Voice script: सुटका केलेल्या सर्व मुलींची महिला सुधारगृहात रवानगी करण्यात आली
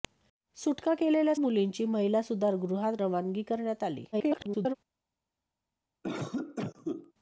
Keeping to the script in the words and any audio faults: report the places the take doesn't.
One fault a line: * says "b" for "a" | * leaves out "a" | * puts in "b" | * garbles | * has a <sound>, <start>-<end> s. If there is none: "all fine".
* leaves out "सर्व"
* garbles
* has a cough, 6.0-7.1 s